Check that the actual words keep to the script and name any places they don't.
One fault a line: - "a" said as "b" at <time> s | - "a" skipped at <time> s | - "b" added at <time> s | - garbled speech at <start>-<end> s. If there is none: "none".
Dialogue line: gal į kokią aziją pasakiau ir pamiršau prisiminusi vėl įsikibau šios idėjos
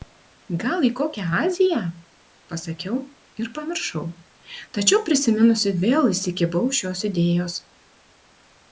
- "tačiau" added at 4.8 s